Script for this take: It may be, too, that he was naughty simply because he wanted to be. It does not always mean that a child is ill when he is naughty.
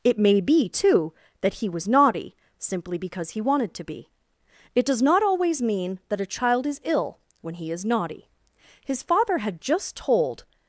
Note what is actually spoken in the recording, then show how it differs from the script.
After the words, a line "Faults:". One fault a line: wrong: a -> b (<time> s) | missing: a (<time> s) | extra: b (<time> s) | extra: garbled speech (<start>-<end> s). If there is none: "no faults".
It may be, too, that he was naughty simply because he wanted to be. It does not always mean that a child is ill when he is naughty. His father had just told
Faults:
extra: His father had just told (8.9 s)